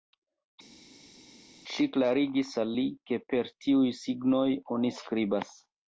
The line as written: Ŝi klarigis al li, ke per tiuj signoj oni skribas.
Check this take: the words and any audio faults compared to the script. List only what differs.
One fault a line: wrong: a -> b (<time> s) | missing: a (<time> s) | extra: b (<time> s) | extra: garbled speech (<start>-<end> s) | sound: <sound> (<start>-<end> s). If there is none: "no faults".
no faults